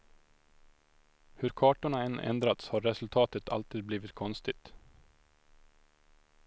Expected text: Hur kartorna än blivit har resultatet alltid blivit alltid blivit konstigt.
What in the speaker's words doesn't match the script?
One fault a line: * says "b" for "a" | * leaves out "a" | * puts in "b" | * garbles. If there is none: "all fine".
* says "ändrats" for "blivit"
* leaves out "alltid blivit"